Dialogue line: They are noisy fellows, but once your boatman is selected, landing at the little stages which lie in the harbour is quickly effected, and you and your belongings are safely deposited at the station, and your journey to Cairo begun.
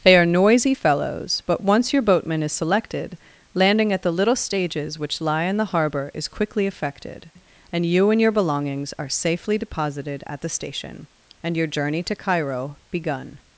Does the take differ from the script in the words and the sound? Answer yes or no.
no